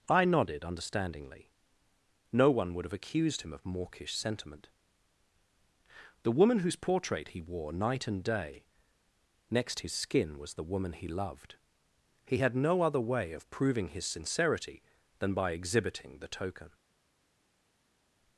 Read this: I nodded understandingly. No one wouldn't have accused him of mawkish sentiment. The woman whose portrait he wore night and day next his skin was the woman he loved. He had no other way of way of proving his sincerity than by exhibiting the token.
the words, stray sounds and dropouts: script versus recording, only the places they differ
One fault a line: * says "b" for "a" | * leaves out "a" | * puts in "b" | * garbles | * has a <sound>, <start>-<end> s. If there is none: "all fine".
* says "would" for "wouldn't"
* leaves out "way of"